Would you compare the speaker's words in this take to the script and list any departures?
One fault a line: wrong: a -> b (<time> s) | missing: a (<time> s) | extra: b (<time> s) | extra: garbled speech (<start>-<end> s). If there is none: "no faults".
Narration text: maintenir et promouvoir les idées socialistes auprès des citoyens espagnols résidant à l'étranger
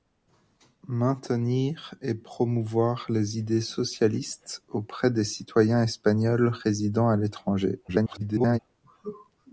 extra: garbled speech (7.9-8.6 s)